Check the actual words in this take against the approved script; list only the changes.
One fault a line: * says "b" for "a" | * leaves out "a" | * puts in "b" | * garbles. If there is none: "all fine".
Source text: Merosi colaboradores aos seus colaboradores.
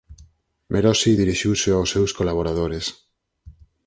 * says "dirixiuse" for "colaboradores"